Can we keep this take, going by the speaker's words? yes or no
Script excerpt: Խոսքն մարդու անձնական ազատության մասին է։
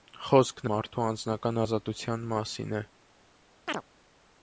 yes